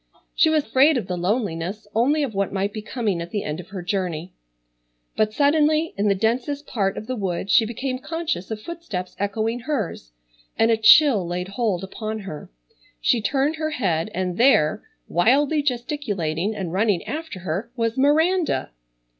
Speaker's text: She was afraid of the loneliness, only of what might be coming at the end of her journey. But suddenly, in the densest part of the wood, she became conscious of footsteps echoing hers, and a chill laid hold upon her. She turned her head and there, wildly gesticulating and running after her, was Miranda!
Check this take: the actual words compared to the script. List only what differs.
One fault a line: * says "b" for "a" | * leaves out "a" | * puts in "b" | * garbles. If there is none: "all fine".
all fine